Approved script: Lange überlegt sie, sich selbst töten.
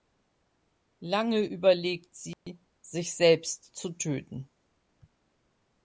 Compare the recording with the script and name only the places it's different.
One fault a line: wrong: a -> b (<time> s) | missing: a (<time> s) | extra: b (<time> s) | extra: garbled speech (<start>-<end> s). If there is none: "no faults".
extra: zu (3.7 s)